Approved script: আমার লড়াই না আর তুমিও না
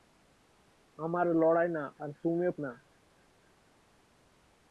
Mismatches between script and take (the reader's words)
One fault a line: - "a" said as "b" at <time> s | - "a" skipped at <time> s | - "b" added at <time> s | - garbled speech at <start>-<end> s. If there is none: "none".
none